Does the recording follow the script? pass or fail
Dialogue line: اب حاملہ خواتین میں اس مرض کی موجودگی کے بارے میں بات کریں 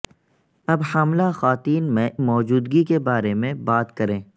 fail